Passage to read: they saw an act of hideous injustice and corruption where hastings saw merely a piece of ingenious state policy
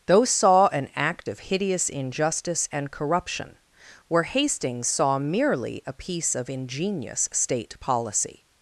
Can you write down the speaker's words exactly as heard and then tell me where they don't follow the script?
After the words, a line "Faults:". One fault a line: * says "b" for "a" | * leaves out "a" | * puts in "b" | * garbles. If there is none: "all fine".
those saw an act of hideous injustice and corruption where hastings saw merely a piece of ingenious state policy
Faults:
* says "those" for "they"